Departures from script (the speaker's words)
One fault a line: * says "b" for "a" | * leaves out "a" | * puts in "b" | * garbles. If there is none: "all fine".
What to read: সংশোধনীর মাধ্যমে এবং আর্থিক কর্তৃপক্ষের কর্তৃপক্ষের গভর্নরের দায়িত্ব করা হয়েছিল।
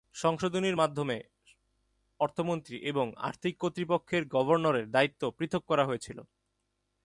* puts in "অর্থমন্ত্রী"
* leaves out "কর্তৃপক্ষের"
* puts in "পৃথক"